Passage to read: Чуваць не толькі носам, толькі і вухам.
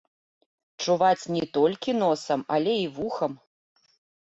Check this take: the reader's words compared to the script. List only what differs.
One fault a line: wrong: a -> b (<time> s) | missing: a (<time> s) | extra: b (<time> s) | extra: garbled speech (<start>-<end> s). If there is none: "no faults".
wrong: толькі -> але (2.6 s)